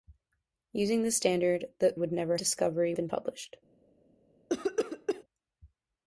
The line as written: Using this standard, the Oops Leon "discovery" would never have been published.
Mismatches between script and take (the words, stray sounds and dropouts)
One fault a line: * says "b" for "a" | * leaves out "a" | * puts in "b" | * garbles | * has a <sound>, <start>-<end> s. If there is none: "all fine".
* leaves out "Oops Leon discovery"
* says "discovery" for "have"
* has a cough, 4.5-5.2 s